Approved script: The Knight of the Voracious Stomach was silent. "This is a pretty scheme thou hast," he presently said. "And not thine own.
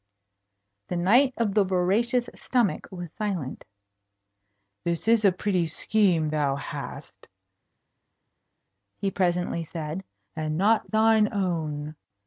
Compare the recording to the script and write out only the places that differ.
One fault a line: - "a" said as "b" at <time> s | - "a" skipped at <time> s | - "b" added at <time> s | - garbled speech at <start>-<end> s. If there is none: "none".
none